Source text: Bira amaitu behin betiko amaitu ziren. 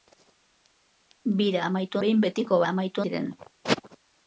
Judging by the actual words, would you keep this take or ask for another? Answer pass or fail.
pass